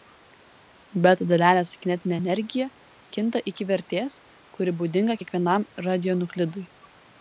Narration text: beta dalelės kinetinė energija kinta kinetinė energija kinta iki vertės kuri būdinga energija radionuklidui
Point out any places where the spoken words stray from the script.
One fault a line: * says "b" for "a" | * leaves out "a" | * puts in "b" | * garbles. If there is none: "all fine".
* leaves out "kinetinė energija kinta"
* says "kiekvienam" for "energija"